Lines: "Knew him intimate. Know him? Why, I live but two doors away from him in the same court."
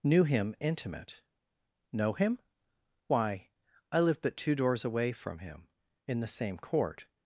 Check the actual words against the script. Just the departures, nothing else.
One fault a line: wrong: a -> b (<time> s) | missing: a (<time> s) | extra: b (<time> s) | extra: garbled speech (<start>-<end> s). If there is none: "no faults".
no faults